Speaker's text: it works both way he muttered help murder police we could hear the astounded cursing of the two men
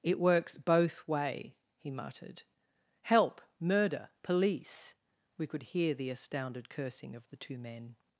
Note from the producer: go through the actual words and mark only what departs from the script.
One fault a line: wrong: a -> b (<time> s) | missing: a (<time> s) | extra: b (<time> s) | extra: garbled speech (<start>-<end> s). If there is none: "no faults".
no faults